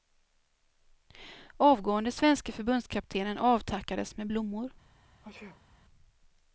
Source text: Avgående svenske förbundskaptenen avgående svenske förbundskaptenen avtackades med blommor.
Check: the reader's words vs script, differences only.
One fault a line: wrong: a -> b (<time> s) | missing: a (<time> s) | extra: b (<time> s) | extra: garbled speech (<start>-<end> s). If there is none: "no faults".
missing: avgående svenske förbundskaptenen (3.4 s)